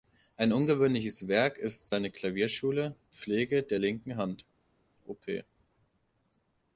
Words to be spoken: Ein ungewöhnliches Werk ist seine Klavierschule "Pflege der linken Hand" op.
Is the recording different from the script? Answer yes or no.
no